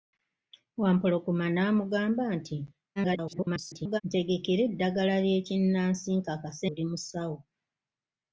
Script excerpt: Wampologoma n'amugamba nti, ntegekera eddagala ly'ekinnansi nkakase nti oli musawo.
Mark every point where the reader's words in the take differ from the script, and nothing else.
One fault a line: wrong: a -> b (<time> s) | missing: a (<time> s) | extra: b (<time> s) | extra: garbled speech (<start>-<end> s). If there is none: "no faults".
extra: garbled speech (3.0-4.0 s)
missing: nti (6.7 s)